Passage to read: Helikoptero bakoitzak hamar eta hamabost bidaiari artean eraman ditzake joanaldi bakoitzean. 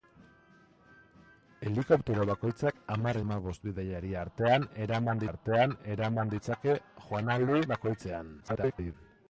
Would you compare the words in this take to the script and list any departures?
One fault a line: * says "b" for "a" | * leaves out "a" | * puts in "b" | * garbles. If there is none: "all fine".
* leaves out "eta"
* puts in "artean eraman"
* garbles